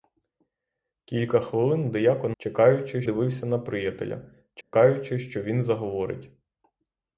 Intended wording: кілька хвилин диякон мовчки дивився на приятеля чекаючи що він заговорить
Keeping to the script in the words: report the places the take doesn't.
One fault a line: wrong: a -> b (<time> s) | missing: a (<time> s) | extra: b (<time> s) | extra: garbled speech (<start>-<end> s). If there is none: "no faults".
wrong: мовчки -> чекаючи (2.4 s)